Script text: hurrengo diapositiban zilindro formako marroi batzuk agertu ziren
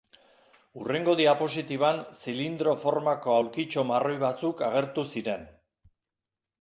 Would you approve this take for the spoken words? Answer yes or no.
no